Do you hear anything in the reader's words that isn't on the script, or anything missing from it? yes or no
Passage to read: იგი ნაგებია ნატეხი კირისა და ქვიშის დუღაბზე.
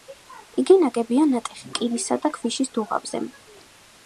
no